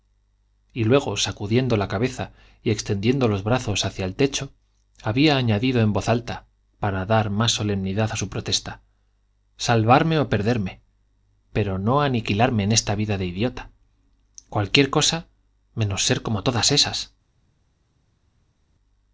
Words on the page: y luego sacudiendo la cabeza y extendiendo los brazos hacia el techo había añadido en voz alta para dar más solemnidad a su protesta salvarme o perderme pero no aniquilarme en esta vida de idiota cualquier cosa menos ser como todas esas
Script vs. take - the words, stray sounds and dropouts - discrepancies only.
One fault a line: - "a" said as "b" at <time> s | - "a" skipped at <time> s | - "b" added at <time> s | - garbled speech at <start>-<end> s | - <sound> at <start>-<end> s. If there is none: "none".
none